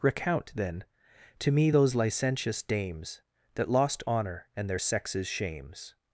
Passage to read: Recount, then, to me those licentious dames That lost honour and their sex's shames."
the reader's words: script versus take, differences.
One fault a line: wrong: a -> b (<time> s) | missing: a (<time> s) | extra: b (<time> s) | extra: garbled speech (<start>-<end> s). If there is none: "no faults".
no faults